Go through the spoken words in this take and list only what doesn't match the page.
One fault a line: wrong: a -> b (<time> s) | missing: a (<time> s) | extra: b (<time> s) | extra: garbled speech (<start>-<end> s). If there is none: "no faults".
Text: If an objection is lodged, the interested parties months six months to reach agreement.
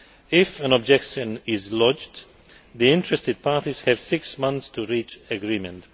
wrong: months -> have (3.8 s)